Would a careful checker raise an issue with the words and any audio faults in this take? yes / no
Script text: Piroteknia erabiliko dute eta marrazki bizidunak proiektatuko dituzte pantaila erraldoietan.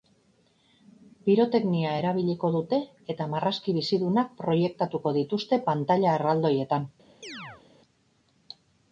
yes